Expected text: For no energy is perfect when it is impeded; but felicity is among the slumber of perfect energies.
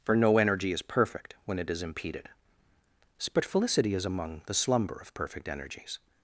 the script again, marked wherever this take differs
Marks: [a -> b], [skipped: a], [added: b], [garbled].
For no energy is perfect when it is impeded; but felicity is among the slumber of perfect energies.